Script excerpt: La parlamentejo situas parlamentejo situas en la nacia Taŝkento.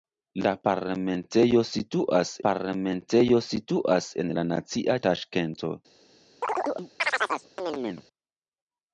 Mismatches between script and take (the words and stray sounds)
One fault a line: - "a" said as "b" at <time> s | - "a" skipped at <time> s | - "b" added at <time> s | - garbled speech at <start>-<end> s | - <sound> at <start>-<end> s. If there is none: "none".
- chirp at 6.4-8.1 s